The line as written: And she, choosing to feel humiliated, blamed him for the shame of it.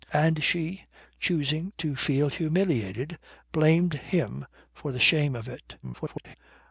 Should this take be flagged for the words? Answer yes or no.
yes